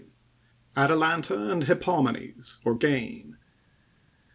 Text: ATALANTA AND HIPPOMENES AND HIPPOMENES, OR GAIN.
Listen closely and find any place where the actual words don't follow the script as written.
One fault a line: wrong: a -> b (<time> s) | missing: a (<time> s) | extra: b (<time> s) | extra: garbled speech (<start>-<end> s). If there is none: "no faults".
missing: AND HIPPOMENES (2.6 s)